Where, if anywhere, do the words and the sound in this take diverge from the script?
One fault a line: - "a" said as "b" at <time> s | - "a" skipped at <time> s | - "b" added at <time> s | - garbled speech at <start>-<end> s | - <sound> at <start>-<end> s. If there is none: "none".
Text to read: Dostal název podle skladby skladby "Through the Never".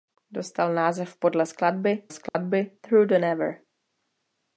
- dropout at 2.3-2.3 s